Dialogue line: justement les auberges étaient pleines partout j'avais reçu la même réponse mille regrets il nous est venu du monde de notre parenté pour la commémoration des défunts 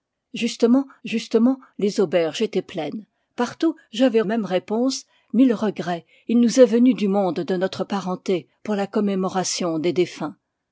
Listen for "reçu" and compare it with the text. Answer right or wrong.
wrong